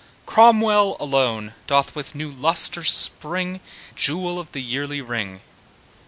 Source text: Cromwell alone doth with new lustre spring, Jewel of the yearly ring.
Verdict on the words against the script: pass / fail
pass